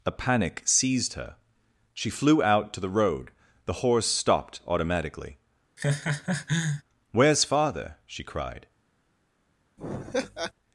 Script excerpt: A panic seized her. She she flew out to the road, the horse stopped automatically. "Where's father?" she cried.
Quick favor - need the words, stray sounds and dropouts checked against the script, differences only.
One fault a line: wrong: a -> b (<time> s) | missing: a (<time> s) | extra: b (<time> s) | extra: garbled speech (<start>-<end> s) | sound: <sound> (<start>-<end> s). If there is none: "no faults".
missing: she (2.1 s)
sound: laugh (5.8-6.8 s)
sound: laugh (9.8-10.5 s)